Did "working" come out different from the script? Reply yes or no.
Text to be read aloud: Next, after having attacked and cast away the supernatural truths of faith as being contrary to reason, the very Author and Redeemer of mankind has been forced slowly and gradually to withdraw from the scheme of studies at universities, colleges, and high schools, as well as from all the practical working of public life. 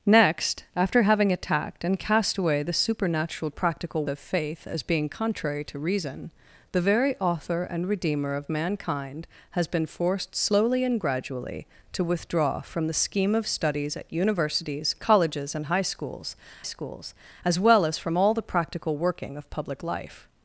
no